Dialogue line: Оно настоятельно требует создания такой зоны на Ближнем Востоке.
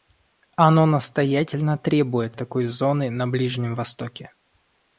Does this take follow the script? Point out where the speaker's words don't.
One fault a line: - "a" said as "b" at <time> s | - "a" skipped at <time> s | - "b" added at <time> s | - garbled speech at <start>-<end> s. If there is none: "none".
- "создания" skipped at 2.4 s